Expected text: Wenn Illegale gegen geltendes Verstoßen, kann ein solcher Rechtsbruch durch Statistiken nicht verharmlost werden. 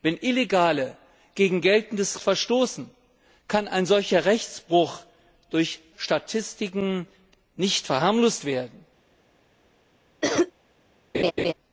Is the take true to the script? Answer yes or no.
yes